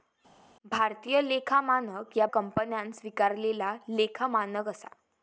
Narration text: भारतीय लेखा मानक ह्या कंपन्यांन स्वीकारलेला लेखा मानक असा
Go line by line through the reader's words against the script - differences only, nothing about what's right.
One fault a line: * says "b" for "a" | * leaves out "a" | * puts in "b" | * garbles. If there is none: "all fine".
all fine